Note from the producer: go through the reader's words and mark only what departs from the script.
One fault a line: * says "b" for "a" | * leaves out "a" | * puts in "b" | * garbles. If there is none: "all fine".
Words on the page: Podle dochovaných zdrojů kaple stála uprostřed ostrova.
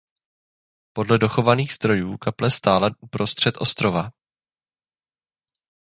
all fine